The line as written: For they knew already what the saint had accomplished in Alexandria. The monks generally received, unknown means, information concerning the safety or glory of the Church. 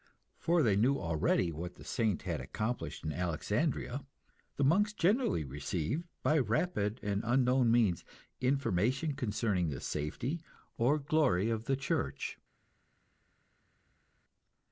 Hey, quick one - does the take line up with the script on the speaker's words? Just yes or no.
no